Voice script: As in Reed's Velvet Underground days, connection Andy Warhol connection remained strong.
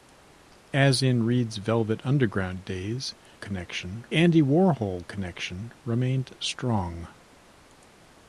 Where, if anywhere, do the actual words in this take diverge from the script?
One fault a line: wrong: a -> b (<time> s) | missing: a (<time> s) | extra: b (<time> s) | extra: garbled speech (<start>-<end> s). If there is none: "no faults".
no faults